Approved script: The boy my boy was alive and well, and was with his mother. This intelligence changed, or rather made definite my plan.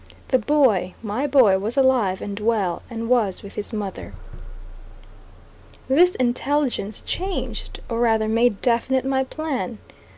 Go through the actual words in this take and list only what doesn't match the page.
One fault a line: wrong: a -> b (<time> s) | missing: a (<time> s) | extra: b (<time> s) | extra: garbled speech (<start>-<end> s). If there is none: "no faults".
no faults